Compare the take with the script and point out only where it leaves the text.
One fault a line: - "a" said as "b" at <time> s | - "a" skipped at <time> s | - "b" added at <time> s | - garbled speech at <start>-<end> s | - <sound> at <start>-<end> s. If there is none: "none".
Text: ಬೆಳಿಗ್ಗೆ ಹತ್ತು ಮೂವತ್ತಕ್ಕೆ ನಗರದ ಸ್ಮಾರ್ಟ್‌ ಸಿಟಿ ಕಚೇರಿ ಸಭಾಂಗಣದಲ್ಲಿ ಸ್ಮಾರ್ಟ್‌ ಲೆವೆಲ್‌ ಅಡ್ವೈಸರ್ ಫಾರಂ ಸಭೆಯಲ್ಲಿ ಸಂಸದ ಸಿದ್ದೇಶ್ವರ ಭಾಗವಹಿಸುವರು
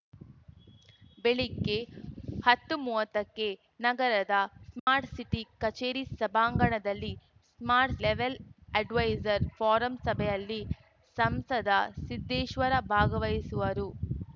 - dropout at 4.8-4.9 s